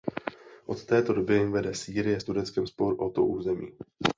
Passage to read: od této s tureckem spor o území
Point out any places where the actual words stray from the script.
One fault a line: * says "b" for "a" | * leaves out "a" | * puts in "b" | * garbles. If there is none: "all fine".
* puts in "doby vede sýrie"
* puts in "to"